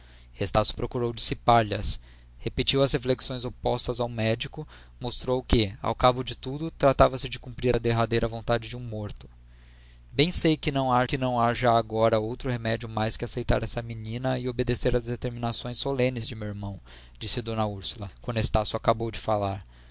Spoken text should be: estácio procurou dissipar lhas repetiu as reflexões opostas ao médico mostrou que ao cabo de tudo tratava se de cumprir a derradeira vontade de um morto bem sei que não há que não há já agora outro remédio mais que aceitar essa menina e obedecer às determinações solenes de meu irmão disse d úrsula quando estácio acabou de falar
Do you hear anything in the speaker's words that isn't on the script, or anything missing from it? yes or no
no